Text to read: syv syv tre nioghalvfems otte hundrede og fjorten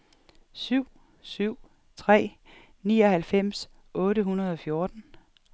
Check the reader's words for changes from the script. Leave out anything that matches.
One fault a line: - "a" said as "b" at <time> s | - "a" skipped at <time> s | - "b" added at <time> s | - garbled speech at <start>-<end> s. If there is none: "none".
none